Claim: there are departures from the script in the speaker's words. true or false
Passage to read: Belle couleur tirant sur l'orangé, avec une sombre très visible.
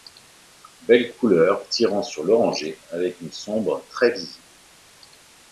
false